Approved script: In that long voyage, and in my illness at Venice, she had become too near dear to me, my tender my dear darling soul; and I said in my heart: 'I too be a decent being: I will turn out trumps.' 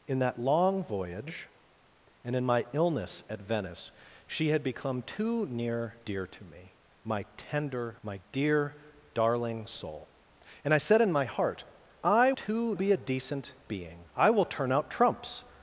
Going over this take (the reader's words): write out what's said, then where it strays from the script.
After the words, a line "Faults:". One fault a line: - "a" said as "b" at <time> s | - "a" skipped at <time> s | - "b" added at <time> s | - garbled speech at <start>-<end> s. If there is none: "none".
In that long voyage, and in my illness at Venice, she had become too near dear to me, my tender my dear darling soul; and I said in my heart: 'I too be a decent being: I will turn out trumps.'
Faults:
none